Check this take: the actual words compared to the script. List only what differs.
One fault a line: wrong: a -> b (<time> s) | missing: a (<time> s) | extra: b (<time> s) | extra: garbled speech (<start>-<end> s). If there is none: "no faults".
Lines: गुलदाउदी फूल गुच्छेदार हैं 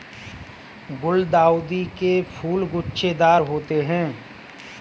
extra: के (2.0 s)
extra: होते (3.4 s)